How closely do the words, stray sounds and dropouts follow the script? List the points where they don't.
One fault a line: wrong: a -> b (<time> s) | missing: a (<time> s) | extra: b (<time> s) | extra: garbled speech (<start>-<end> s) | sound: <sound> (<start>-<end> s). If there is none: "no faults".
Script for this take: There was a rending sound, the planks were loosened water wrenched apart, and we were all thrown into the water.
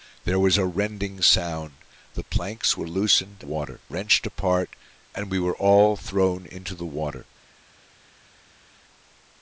no faults